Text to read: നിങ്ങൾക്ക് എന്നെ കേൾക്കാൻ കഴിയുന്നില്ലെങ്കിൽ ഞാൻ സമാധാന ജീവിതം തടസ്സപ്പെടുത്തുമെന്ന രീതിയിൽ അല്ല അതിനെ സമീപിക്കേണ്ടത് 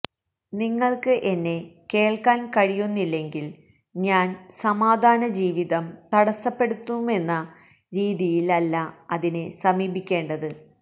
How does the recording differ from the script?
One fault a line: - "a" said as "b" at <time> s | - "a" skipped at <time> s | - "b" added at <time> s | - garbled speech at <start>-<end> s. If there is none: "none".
none